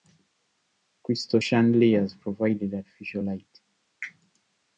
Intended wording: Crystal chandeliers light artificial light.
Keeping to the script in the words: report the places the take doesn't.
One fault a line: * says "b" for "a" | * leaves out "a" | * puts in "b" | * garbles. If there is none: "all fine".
* says "provided" for "light"